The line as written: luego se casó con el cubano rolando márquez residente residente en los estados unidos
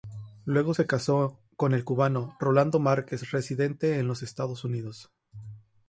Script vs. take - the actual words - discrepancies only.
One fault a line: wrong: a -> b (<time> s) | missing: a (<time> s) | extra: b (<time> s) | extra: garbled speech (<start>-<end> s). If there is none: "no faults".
missing: residente (4.0 s)